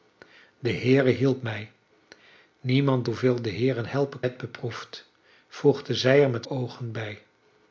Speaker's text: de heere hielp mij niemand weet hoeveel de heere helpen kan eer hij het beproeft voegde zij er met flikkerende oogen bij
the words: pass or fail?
fail